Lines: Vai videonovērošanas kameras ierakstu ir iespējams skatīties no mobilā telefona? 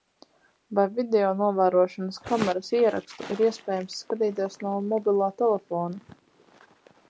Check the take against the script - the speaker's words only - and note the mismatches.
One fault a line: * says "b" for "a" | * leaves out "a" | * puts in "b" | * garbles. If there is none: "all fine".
all fine